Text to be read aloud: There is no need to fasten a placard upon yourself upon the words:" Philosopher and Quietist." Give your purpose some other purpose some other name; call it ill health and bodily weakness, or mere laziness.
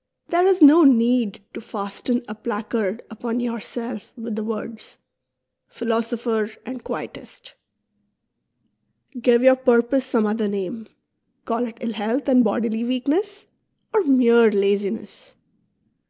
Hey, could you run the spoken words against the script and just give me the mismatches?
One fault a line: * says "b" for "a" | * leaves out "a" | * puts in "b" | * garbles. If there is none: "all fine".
* says "with" for "upon"
* leaves out "purpose some other"